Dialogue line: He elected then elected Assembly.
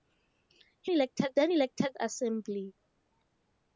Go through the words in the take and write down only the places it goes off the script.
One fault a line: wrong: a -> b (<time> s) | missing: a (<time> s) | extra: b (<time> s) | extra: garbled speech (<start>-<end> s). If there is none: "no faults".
no faults